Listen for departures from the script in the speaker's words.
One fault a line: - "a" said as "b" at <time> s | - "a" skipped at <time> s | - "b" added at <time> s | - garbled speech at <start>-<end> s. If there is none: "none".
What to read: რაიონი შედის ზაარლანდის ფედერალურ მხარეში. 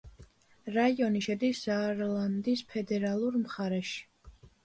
none